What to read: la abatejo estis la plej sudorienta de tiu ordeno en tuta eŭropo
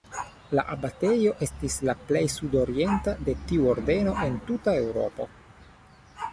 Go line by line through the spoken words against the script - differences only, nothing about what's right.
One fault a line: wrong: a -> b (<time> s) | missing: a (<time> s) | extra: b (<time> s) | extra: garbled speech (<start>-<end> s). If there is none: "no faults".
no faults